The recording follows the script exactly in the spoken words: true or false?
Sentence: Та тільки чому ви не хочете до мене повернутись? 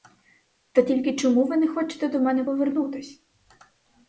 true